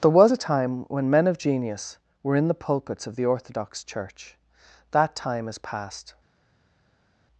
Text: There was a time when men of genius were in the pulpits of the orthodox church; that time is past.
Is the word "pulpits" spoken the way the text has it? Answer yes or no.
yes